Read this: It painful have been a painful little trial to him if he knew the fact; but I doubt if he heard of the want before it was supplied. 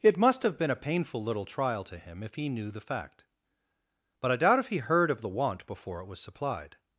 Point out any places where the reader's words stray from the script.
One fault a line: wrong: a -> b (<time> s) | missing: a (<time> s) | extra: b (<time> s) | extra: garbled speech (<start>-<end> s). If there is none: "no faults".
wrong: painful -> must (0.2 s)